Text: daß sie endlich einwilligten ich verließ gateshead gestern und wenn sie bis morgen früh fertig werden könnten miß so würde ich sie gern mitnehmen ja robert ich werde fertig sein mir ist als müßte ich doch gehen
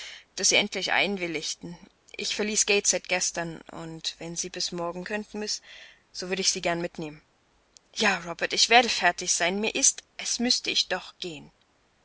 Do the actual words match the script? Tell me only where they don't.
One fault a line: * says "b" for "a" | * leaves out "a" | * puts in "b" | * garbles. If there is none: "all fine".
* leaves out "früh fertig werden"